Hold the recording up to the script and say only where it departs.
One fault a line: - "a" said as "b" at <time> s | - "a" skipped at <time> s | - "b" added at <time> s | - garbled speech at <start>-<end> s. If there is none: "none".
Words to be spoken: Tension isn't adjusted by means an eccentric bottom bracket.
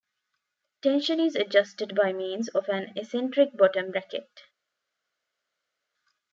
- "isn't" said as "is" at 1.2 s
- "of" added at 2.5 s